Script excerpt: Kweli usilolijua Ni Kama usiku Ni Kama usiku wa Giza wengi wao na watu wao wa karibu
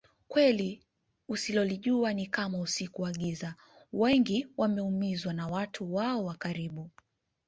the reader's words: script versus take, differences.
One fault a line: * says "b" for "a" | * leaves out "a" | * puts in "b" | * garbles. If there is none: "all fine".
* leaves out "Ni Kama usiku"
* says "wameumizwa" for "wao"